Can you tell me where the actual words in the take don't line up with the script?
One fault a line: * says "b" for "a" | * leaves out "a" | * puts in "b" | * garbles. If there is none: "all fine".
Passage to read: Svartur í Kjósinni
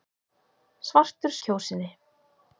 all fine